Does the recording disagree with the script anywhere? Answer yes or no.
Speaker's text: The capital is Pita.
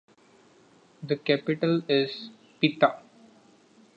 no